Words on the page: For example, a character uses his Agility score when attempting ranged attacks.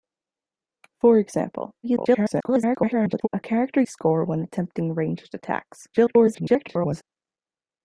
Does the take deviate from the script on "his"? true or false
true